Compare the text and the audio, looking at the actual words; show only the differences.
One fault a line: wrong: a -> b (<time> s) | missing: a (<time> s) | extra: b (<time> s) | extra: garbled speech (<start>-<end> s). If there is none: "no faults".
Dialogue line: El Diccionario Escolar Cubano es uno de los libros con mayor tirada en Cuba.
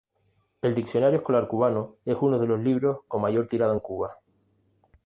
no faults